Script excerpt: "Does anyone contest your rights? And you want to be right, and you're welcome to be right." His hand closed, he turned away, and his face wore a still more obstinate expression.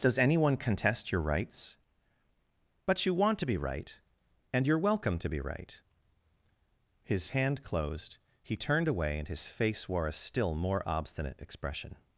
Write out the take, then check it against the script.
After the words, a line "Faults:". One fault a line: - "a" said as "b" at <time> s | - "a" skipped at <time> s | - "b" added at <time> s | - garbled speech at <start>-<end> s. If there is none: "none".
"Does anyone contest your rights? But you want to be right, and you're welcome to be right." His hand closed, he turned away, and his face wore a still more obstinate expression.
Faults:
- "And" said as "But" at 2.9 s